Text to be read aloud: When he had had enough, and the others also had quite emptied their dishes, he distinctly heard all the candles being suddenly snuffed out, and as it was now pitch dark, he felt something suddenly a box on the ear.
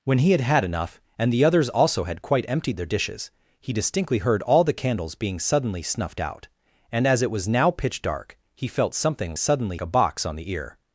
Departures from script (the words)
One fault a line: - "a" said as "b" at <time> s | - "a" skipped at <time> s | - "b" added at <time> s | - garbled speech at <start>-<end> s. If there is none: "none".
none